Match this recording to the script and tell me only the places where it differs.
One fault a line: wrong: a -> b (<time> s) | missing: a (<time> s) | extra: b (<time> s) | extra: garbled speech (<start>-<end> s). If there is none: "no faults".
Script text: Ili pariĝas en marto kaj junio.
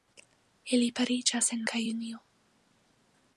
missing: marto (1.6 s)